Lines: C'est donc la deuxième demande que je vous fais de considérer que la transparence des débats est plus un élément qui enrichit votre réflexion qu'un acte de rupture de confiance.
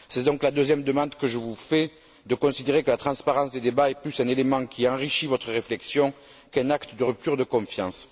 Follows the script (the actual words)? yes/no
yes